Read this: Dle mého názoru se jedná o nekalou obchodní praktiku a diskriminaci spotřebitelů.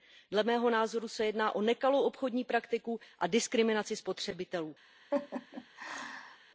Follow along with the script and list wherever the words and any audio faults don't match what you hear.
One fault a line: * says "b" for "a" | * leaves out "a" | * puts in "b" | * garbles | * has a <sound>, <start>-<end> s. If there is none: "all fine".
* has a laugh, 5.1-6.4 s